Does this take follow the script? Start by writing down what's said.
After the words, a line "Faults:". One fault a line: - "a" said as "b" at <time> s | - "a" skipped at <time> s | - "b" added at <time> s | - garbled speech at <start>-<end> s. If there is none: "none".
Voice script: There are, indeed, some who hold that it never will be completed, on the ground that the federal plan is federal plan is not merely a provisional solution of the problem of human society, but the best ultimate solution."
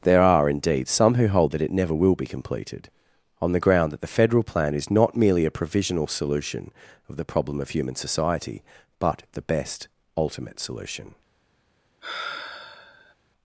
There are, indeed, some who hold that it never will be completed, on the ground that the federal plan is not merely a provisional solution of the problem of human society, but the best ultimate solution."
Faults:
- "federal plan is" skipped at 4.9 s